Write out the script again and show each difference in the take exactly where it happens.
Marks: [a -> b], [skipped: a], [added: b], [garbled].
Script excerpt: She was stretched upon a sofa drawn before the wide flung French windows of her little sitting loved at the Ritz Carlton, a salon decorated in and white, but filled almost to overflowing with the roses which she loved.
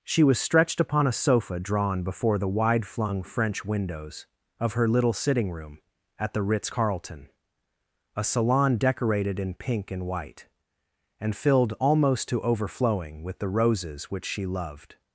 She was stretched upon a sofa drawn before the wide flung French windows of her little sitting [loved -> room] at the Ritz Carlton, a salon decorated in [added: pink] and white, [but -> and] filled almost to overflowing with the roses which she loved.